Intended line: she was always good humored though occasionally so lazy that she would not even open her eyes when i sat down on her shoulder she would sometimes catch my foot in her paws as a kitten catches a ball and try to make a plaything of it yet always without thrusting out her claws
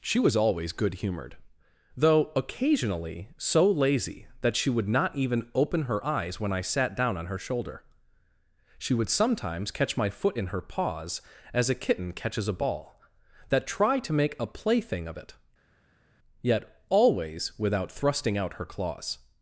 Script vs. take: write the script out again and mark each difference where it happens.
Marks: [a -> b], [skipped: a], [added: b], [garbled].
she was always good humored though occasionally so lazy that she would not even open her eyes when i sat down on her shoulder she would sometimes catch my foot in her paws as a kitten catches a ball [and -> that] try to make a plaything of it yet always without thrusting out her claws